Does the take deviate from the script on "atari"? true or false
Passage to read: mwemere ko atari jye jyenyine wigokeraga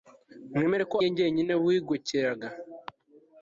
true